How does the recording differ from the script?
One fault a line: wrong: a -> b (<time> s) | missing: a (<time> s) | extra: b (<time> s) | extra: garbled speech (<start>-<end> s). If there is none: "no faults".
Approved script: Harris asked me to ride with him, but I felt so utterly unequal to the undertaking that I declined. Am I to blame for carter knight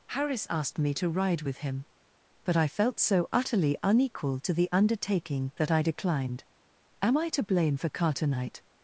no faults